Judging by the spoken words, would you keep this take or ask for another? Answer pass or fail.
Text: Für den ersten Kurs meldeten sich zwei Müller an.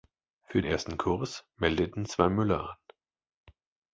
fail